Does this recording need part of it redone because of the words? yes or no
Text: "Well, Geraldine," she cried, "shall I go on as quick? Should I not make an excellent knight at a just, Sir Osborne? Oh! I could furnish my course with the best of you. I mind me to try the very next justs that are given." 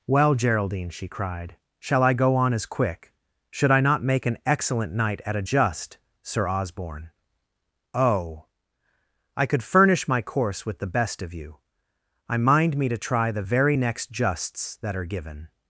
no